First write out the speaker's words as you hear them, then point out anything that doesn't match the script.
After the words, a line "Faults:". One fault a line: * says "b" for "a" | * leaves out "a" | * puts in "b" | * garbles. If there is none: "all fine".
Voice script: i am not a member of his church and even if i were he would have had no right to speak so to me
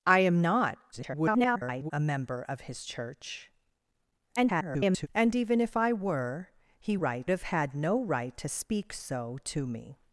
i am not [garbled] a member of his church [garbled] and even if i were he right have had no right to speak so to me
Faults:
* garbles
* garbles
* says "right" for "would"